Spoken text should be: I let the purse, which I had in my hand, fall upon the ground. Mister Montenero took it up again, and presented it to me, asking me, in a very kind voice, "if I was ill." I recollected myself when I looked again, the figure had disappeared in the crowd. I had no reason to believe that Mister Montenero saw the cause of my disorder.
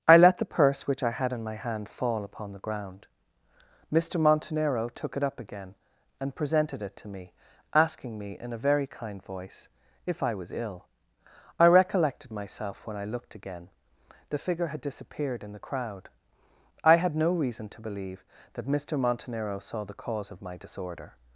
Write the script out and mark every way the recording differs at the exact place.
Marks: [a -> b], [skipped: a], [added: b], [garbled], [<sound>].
I let the purse, which I had in my hand, fall upon the ground. Mister Montenero took it up again, and presented it to me, asking me, in a very kind voice, "if I was ill." I recollected myself when I looked again, the figure had disappeared in the crowd. I had no reason to believe that Mister Montenero saw the cause of my disorder.